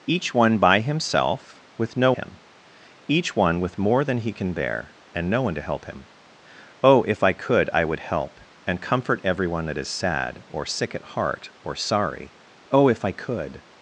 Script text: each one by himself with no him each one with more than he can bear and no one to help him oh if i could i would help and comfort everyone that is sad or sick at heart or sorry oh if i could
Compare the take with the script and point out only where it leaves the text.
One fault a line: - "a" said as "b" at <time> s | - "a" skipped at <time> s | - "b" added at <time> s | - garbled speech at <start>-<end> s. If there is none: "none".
none